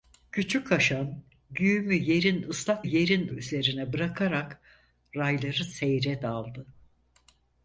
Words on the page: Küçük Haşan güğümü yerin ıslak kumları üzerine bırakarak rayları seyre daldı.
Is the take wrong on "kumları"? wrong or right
wrong